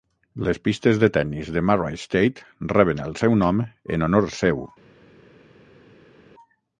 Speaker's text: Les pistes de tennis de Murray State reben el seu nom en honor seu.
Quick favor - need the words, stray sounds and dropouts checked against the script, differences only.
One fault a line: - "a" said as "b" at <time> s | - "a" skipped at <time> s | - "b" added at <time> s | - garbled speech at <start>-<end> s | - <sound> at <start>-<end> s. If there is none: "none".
none